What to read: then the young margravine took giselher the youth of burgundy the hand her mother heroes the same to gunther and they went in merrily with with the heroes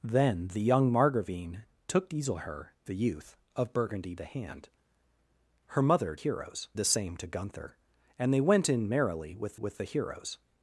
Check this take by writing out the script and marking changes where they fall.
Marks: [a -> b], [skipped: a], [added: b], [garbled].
then the young margravine took giselher the youth of burgundy the hand her mother heroes the same to gunther and they went in merrily with with the heroes